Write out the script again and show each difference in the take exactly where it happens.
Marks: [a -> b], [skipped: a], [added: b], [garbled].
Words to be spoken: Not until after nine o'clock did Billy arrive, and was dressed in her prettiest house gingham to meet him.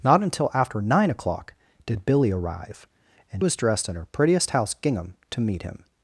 Not until after nine o'clock did Billy arrive, and was dressed in her prettiest house gingham to meet him.